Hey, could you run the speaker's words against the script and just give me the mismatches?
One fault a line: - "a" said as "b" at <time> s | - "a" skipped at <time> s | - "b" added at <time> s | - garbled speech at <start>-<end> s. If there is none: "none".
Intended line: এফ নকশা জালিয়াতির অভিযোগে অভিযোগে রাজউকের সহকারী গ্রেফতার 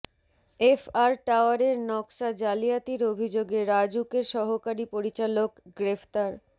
- "আর টাওয়ারের" added at 0.9 s
- "অভিযোগে" skipped at 3.6 s
- "পরিচালক" added at 4.9 s